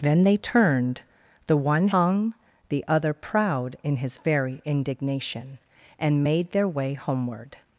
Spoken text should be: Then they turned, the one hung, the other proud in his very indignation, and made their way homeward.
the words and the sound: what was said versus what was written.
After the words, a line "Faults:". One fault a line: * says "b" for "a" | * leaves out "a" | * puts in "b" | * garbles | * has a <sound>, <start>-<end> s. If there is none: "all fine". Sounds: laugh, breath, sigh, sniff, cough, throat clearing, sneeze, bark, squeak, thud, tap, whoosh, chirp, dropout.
Then they turned, the one hung, the other proud in his very indignation, and made their way homeward.
Faults:
all fine